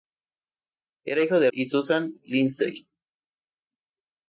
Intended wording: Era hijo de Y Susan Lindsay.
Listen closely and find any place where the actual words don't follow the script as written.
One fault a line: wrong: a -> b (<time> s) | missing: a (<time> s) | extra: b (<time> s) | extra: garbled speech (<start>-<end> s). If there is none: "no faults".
no faults